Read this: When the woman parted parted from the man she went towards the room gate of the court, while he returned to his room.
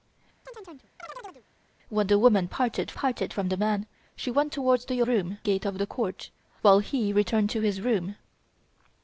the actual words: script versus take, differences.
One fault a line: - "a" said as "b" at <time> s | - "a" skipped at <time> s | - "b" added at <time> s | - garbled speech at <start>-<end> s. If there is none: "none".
none